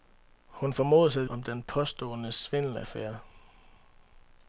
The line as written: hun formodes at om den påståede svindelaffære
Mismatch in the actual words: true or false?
false